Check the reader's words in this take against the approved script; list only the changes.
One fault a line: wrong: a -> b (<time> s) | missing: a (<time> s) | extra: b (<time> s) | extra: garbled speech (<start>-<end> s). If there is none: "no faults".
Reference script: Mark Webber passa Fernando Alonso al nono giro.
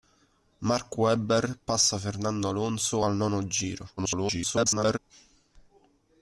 extra: garbled speech (4.0-5.0 s)